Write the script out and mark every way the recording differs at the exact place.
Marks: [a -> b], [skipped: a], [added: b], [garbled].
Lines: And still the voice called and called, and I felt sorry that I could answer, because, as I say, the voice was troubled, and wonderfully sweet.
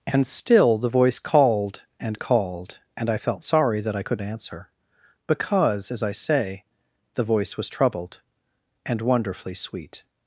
And still the voice called and called, and I felt sorry that I could answer, because, as I say, the voice was troubled, and wonderfully sweet.